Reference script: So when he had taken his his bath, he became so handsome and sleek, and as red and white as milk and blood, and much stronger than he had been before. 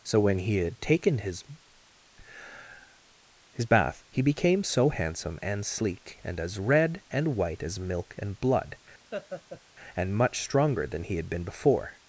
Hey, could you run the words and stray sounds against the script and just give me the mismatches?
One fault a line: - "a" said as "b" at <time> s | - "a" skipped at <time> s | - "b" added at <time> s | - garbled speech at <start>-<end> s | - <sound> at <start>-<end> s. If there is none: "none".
- laugh at 9.1-9.6 s